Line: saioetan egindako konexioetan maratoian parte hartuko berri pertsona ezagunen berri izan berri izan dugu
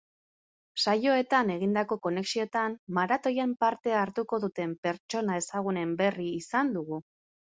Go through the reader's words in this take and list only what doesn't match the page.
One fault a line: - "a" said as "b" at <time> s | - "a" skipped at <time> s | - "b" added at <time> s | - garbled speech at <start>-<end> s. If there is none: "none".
- "berri" said as "duten" at 4.5 s
- "berri izan" skipped at 6.8 s